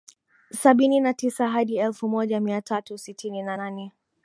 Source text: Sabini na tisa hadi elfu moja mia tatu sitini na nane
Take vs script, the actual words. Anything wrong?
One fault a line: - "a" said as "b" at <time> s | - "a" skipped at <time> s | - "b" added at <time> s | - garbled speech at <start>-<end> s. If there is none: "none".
none